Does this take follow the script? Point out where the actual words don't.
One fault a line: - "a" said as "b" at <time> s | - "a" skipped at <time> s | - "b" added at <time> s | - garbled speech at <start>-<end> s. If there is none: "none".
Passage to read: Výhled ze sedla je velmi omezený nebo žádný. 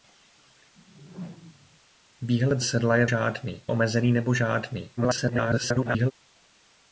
- "ze" skipped at 2.6 s
- "velmi" said as "žádný" at 3.0 s
- garbled speech at 5.0-6.1 s